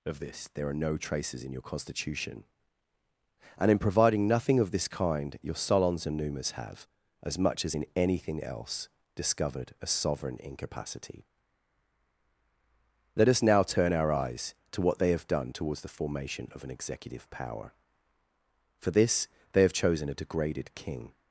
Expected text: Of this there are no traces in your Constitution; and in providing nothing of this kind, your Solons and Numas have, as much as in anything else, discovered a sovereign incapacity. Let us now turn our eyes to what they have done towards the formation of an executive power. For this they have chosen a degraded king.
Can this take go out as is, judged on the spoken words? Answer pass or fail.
pass